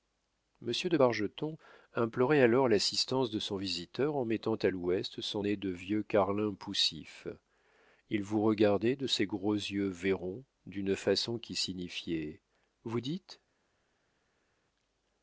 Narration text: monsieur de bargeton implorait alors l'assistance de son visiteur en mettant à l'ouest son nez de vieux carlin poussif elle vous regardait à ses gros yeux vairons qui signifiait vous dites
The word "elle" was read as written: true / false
false